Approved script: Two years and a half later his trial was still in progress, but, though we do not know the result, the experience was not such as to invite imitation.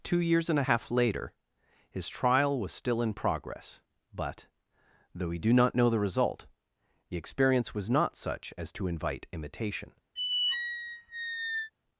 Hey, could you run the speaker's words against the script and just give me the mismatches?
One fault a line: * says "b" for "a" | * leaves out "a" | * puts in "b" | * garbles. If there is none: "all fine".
all fine